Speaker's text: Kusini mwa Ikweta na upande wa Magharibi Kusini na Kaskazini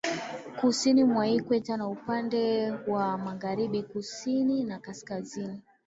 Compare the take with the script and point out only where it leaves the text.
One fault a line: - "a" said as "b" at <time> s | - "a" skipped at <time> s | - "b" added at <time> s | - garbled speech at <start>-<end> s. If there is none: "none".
none